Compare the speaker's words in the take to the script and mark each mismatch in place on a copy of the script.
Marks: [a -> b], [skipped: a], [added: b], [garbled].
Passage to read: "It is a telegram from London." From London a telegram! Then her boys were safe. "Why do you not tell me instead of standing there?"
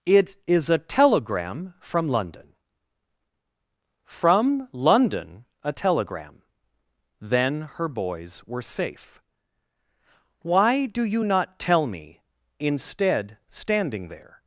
"It is a telegram from London." From London a telegram! Then her boys were safe. "Why do you not tell me instead [skipped: of] standing there?"